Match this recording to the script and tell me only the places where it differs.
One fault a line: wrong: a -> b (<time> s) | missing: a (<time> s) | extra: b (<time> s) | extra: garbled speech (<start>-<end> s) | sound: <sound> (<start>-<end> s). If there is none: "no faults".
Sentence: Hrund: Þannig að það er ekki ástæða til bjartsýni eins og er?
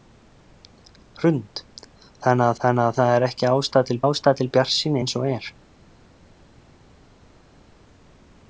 extra: Þannig að (2.6 s)
extra: ástæða til (4.0 s)